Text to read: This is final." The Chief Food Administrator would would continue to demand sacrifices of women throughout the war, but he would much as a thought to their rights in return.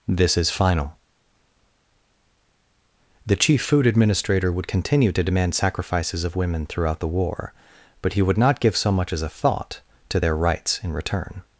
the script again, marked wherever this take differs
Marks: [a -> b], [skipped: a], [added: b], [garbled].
This is final." The Chief Food Administrator would [skipped: would] continue to demand sacrifices of women throughout the war, but he would [added: not give so] much as a thought to their rights in return.